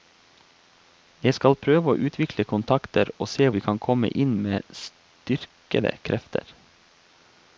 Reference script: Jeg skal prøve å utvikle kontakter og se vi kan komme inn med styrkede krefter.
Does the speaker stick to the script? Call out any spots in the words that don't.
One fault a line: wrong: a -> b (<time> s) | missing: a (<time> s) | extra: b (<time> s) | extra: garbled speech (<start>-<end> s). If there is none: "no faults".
no faults